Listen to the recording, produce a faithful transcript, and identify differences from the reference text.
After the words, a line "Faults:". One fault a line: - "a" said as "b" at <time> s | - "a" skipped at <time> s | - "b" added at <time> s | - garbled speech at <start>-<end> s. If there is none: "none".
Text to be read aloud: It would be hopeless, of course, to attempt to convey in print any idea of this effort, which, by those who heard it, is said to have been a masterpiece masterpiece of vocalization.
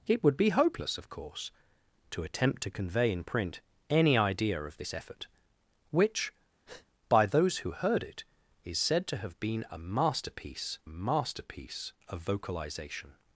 It would be hopeless, of course, to attempt to convey in print any idea of this effort, which, by those who heard it, is said to have been a masterpiece masterpiece of vocalization.
Faults:
none